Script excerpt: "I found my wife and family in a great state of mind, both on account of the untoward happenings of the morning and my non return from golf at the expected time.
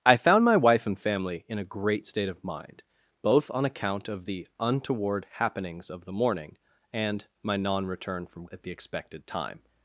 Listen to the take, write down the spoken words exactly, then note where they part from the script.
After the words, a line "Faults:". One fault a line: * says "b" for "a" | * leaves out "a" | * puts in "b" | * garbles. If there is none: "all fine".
"I found my wife and family in a great state of mind, both on account of the untoward happenings of the morning and my non return from at the expected time.
Faults:
* leaves out "golf"